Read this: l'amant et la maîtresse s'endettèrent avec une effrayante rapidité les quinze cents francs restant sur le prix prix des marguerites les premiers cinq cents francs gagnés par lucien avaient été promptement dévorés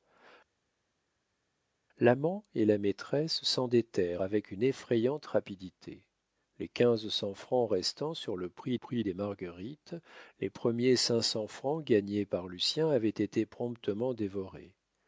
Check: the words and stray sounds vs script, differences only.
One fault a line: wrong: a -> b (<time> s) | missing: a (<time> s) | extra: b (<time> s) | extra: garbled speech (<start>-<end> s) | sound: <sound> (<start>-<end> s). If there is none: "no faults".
no faults